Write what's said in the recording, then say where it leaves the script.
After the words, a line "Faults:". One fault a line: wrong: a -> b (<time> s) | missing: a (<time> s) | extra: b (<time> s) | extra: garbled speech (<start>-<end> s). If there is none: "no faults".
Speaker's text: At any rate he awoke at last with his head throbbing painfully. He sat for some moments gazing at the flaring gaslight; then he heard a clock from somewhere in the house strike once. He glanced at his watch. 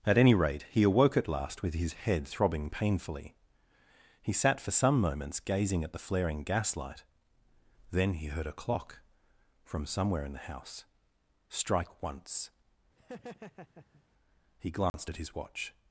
At any rate he awoke at last with his head throbbing painfully. He sat for some moments gazing at the flaring gaslight; then he heard a clock from somewhere in the house strike once. He glanced at his watch.
Faults:
no faults